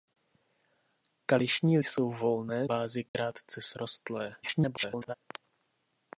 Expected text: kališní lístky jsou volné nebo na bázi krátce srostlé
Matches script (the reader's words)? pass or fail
fail